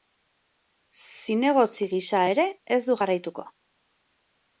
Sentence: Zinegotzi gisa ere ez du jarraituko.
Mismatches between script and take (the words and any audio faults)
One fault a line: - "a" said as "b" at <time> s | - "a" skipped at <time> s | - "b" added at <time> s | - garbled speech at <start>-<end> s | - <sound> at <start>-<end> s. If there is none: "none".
none